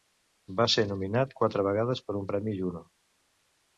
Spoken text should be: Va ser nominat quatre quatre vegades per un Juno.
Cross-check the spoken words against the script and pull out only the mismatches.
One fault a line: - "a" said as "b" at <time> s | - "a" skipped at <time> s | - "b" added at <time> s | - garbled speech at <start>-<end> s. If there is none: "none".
- "quatre" skipped at 1.7 s
- "premi" added at 2.3 s